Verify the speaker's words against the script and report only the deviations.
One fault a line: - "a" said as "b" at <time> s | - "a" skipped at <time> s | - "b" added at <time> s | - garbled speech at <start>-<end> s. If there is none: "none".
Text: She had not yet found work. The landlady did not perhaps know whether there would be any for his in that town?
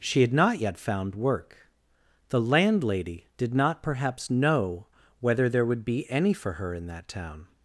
- "his" said as "her" at 6.5 s